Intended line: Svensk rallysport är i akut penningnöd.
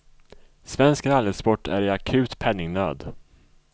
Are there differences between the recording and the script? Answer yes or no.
no